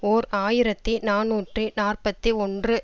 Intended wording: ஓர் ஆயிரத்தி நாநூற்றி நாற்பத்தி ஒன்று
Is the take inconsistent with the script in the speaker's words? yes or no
no